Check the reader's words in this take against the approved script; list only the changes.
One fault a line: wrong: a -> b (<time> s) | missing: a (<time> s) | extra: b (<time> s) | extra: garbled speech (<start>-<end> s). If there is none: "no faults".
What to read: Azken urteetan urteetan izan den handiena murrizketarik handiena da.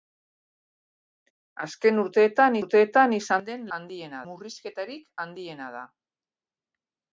no faults